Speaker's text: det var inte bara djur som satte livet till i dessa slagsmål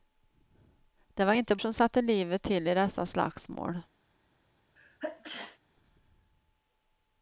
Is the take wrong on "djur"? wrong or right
wrong